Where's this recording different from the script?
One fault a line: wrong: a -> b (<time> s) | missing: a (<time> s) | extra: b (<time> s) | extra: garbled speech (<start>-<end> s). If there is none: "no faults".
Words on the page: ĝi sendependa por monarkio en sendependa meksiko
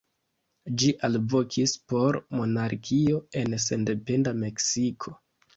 wrong: sendependa -> alvokis (1.1 s)